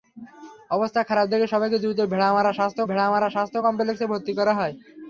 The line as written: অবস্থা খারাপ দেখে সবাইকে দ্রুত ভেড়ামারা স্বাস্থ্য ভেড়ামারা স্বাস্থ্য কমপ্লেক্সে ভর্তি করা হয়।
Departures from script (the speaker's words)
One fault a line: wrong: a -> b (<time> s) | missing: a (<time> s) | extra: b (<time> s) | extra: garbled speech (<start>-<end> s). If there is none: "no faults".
no faults